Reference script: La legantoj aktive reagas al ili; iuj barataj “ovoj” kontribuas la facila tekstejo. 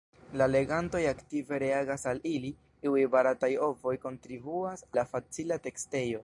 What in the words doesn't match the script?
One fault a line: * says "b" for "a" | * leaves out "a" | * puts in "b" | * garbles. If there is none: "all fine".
all fine